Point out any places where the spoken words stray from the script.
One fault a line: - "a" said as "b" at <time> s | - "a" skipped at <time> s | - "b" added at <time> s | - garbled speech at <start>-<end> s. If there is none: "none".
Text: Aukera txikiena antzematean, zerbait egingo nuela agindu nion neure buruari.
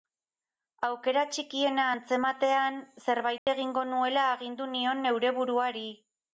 none